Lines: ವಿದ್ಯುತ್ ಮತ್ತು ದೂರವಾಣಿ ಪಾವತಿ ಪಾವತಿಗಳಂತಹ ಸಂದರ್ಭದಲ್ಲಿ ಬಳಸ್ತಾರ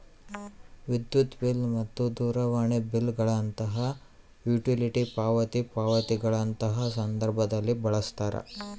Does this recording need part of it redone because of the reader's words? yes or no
yes